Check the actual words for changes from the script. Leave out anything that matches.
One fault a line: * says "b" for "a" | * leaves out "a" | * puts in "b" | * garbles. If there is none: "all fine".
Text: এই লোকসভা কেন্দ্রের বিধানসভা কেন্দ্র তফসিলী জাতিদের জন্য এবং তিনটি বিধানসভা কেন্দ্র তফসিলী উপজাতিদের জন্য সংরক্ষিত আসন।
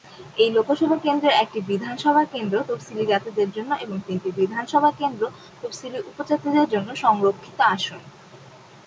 * puts in "একটি"